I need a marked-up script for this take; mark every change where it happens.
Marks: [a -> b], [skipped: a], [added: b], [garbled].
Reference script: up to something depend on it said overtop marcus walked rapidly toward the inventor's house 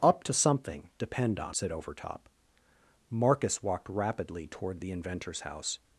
up to something depend on [skipped: it] said overtop marcus walked rapidly toward the inventor's house